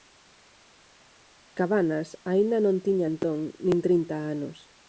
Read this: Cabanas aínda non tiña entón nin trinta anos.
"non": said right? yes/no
yes